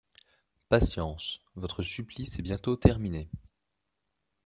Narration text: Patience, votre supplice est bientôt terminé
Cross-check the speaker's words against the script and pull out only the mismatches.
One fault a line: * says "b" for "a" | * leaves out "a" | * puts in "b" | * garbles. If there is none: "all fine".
all fine